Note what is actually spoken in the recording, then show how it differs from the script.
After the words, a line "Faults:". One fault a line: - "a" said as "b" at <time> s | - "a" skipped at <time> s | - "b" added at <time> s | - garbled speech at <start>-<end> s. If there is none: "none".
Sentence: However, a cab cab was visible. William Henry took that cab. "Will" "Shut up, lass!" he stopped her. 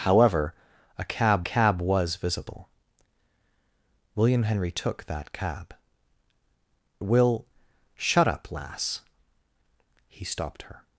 However, a cab cab was visible. William Henry took that cab. "Will" "Shut up, lass!" he stopped her.
Faults:
none